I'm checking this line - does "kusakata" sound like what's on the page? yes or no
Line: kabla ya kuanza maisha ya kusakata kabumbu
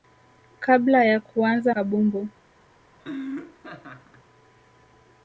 no